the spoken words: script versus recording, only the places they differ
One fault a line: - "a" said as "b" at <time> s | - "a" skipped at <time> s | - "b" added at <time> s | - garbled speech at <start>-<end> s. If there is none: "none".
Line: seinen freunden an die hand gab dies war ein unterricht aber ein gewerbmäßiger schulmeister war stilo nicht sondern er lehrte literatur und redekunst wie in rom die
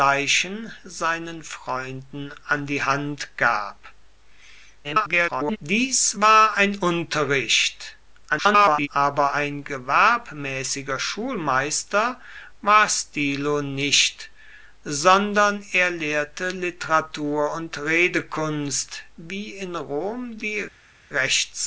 - garbled speech at 4.8-5.6 s
- garbled speech at 8.3-8.9 s